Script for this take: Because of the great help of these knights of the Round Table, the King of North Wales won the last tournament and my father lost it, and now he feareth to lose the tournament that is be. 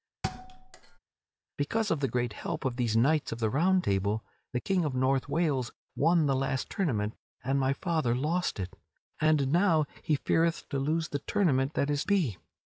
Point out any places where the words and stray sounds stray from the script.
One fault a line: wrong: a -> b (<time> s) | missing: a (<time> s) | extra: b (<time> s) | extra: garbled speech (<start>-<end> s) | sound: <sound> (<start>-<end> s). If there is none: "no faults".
sound: thud (0.2-1.0 s)